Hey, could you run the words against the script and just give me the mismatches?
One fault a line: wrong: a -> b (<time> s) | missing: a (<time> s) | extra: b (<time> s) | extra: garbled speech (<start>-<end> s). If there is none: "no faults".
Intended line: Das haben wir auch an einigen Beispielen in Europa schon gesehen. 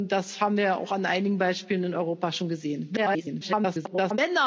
extra: garbled speech (3.0-4.2 s)